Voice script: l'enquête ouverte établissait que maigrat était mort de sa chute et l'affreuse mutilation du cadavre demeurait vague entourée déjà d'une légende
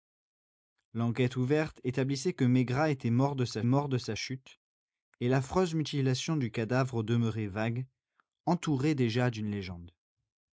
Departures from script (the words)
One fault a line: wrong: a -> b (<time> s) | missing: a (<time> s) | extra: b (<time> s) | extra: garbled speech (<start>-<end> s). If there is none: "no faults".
extra: mort de sa (3.6 s)